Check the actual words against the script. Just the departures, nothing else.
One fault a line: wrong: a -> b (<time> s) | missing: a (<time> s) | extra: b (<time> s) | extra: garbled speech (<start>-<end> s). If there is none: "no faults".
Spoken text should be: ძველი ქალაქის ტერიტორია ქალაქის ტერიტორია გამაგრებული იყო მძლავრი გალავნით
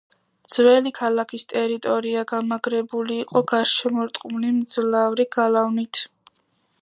missing: ქალაქის ტერიტორია (2.2 s)
extra: გარშემორტყმული (3.5 s)